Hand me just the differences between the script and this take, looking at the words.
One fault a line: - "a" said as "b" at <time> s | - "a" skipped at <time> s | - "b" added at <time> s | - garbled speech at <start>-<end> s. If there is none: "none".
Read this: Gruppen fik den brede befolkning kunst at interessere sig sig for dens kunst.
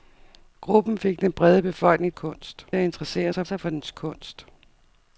none